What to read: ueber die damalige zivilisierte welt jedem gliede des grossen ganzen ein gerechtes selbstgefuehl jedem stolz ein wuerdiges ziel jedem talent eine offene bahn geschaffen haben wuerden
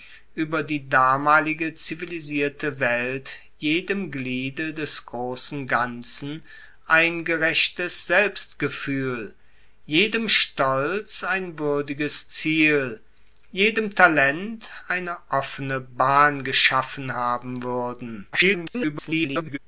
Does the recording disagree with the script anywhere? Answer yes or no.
yes